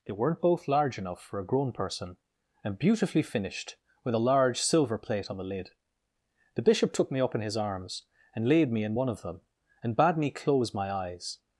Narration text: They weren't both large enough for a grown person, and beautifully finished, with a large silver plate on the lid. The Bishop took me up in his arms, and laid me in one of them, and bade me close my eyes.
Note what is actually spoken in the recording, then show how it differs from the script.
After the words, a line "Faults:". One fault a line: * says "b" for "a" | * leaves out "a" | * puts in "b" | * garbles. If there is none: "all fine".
They weren't both large enough for a grown person, and beautifully finished, with a large silver plate on the lid. The Bishop took me up in his arms, and laid me in one of them, and bade me close my eyes.
Faults:
all fine